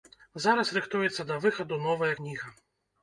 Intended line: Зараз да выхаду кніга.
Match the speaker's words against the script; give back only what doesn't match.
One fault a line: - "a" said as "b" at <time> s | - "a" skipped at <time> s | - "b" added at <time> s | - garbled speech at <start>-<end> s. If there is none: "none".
- "рыхтуецца" added at 0.8 s
- "новая" added at 1.9 s